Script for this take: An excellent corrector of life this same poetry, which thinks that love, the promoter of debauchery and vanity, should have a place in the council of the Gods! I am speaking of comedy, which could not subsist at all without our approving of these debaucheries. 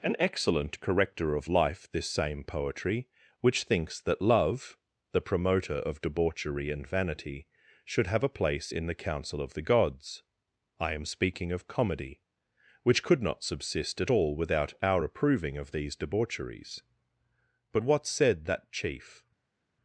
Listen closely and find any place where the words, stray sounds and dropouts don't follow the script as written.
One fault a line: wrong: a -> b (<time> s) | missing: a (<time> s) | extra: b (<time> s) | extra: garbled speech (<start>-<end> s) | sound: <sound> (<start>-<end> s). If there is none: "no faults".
extra: But what said that chief (17.7 s)